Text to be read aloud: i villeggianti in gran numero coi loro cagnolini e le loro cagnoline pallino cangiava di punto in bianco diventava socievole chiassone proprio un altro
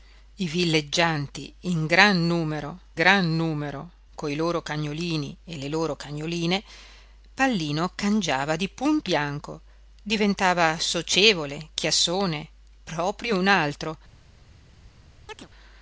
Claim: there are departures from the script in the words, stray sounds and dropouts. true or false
true